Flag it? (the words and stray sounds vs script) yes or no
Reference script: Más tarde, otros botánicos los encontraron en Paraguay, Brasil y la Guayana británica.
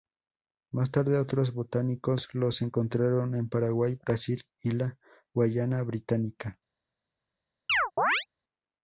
yes